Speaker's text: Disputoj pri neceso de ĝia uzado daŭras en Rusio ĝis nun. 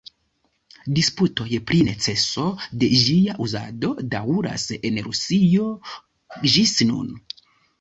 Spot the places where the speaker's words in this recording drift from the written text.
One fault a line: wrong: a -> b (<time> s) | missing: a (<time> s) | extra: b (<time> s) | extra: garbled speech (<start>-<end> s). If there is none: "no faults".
no faults